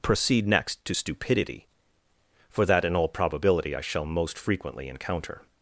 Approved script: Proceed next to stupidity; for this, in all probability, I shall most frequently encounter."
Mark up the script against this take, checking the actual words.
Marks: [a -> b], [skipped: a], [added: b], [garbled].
Proceed next to stupidity; for [this, -> that] in all probability, I shall most frequently encounter."